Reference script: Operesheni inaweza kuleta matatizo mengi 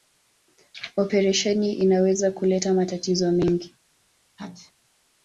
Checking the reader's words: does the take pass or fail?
pass